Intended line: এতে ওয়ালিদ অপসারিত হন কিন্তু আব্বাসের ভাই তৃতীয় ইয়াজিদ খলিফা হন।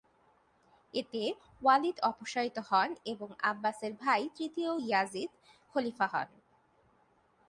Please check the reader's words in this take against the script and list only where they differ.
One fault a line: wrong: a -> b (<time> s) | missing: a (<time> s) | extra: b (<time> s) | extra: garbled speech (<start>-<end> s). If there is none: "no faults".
wrong: কিন্তু -> এবং (3.0 s)